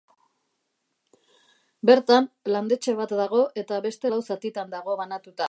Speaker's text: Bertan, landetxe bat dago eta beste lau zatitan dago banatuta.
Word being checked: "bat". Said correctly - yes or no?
yes